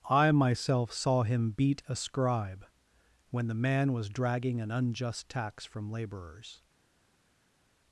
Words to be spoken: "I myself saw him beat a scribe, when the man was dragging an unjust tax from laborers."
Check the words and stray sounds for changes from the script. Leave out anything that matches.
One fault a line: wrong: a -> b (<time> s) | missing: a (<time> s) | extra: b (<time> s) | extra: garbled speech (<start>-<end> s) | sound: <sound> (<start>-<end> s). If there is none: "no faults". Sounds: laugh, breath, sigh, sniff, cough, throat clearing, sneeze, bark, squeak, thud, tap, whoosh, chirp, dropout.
no faults